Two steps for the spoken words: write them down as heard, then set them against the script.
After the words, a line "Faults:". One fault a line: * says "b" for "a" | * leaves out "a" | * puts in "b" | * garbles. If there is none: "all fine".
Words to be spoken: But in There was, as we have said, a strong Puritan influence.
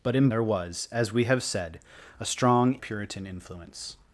But in There was, as we have said, a strong Puritan influence.
Faults:
all fine